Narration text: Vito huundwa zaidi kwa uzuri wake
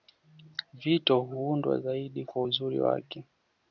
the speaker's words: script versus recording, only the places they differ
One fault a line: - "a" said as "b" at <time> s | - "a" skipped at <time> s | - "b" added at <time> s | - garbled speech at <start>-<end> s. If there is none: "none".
none